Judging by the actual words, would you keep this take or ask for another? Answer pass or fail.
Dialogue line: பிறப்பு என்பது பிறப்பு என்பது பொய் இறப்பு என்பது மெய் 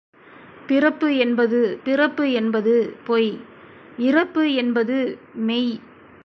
pass